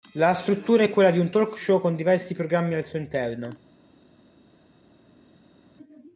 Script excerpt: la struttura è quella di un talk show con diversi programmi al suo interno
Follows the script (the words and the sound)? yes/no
yes